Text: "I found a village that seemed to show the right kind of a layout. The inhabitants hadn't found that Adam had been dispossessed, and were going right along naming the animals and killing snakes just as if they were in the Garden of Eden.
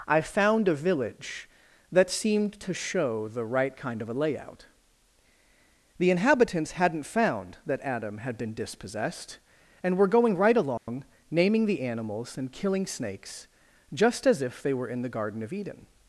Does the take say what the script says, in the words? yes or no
yes